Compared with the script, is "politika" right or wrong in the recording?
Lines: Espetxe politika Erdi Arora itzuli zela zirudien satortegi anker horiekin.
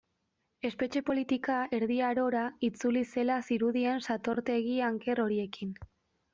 right